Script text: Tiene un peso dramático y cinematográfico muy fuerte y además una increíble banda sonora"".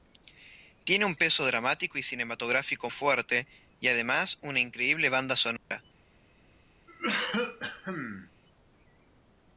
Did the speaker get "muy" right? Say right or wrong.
wrong